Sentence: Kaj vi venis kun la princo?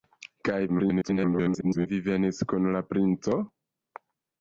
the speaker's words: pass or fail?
fail